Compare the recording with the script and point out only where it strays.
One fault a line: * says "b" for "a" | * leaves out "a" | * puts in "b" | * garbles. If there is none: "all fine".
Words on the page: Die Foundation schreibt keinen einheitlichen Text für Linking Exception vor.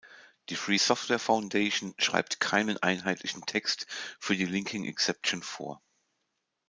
* puts in "Free Software"
* puts in "die"